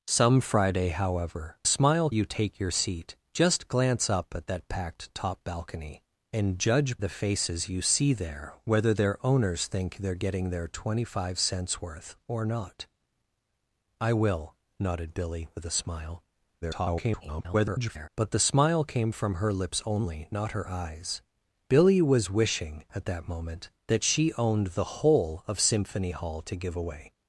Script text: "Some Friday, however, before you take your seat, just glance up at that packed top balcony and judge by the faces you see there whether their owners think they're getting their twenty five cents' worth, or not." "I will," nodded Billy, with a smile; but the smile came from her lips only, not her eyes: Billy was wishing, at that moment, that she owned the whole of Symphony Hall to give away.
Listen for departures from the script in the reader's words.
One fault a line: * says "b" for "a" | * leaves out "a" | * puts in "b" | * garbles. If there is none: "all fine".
* says "smile" for "before"
* leaves out "by"
* garbles